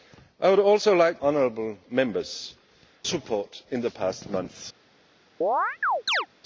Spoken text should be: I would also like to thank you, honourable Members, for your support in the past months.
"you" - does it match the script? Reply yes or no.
no